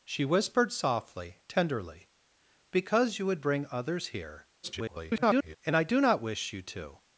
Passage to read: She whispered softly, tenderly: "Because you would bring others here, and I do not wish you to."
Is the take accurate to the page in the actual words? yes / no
no